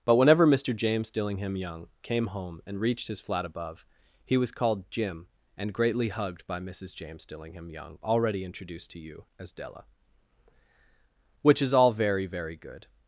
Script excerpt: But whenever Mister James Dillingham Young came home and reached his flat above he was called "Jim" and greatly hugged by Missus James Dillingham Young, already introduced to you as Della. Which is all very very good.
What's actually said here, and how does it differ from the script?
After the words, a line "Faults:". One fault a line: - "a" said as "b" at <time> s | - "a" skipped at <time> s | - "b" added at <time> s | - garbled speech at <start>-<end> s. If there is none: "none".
But whenever Mister James Dillingham Young came home and reached his flat above he was called "Jim" and greatly hugged by Missus James Dillingham Young, already introduced to you as Della. Which is all very very good.
Faults:
none